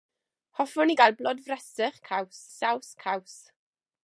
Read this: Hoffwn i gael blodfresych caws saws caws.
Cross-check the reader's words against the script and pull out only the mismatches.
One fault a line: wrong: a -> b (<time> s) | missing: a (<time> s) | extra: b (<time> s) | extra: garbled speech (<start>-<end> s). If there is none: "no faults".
no faults